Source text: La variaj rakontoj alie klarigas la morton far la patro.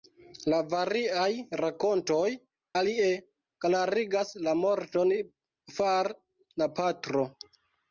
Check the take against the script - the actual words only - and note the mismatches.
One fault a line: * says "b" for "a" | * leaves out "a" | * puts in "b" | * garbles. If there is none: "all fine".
all fine